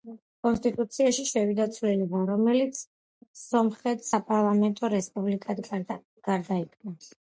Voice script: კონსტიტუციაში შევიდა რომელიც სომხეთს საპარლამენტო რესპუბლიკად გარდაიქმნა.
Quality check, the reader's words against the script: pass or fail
fail